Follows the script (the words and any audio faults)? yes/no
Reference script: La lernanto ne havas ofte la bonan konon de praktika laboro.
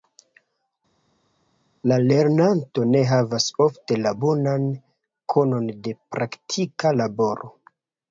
yes